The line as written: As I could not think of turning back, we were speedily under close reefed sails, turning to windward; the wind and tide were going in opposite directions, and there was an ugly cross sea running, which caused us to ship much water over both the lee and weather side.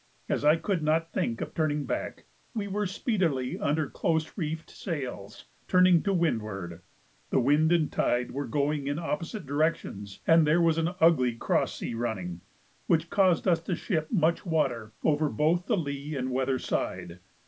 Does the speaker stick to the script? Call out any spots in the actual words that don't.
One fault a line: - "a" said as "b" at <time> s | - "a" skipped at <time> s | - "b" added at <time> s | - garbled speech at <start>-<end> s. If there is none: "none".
none